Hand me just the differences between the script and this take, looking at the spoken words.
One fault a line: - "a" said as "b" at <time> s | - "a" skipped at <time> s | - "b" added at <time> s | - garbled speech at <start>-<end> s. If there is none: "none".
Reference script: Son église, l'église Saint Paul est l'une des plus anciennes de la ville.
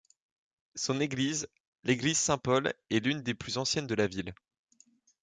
none